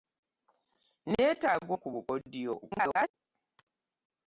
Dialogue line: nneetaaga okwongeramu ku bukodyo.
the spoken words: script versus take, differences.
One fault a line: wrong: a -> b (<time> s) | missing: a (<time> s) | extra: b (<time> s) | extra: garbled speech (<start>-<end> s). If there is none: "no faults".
missing: okwongeramu (1.7 s)
extra: garbled speech (2.6-3.1 s)